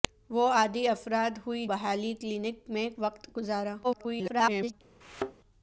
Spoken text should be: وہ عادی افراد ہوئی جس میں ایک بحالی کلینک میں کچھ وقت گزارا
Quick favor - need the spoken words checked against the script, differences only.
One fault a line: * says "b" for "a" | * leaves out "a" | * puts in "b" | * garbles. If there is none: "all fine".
* leaves out "جس میں ایک"
* leaves out "کچھ"
* garbles